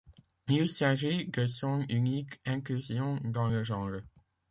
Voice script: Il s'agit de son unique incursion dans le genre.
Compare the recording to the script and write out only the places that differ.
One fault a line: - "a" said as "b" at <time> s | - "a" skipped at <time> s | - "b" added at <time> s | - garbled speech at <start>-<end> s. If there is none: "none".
none